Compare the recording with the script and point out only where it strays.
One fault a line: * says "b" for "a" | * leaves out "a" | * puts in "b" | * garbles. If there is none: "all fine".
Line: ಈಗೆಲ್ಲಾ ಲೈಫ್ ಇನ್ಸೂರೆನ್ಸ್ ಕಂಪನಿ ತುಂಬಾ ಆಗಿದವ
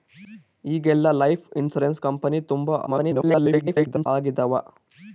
* garbles